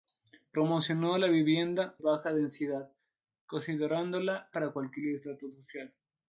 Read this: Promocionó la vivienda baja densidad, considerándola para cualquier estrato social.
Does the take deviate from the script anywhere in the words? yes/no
no